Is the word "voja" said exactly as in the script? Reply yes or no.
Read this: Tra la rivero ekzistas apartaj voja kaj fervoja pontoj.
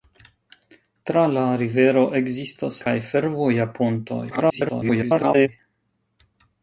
no